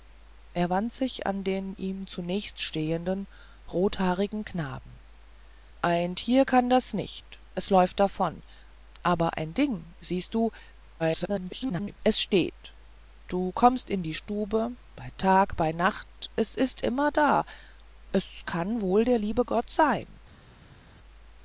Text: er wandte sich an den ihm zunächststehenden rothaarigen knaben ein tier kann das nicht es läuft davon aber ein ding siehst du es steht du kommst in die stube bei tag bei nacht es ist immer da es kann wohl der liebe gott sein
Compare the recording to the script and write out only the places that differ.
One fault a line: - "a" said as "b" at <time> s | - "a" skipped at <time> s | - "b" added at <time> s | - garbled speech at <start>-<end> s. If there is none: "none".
- garbled speech at 11.0-12.0 s